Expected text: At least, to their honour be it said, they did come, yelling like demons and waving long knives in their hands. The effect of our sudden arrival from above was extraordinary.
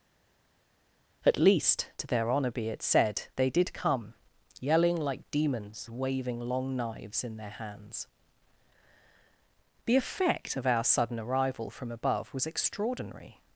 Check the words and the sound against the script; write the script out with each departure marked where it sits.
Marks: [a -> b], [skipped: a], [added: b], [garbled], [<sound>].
At least, to their honour be it said, they did come, yelling like demons [skipped: and] waving long knives in their hands. The effect of our sudden arrival from above was extraordinary.